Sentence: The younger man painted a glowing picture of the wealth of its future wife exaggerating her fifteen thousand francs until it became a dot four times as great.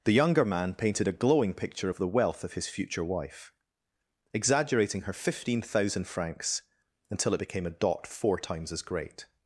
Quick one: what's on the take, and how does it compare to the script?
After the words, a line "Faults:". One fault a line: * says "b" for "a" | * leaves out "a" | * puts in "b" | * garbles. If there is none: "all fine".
The younger man painted a glowing picture of the wealth of his future wife exaggerating her fifteen thousand francs until it became a dot four times as great.
Faults:
* says "his" for "its"